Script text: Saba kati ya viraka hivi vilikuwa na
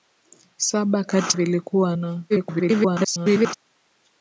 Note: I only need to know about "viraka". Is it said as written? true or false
false